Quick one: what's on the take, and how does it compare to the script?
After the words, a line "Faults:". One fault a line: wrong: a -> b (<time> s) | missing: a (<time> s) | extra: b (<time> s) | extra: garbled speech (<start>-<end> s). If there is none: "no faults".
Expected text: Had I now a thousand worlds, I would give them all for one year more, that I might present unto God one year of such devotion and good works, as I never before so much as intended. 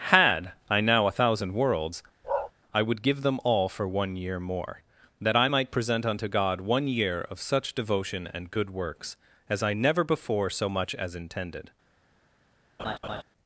Had I now a thousand worlds, I would give them all for one year more, that I might present unto God one year of such devotion and good works, as I never before so much as intended.
Faults:
no faults